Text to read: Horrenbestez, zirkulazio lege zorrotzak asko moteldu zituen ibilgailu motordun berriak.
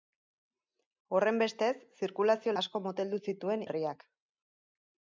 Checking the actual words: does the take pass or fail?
fail